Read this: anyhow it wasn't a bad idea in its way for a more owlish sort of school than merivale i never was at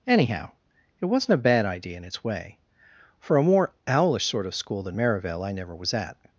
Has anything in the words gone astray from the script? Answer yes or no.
no